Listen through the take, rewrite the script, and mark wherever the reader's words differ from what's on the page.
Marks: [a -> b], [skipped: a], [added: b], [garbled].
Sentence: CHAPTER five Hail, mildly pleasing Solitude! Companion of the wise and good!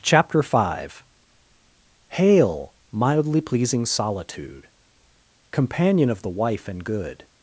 CHAPTER five Hail, mildly pleasing Solitude! Companion of the [wise -> wife] and good!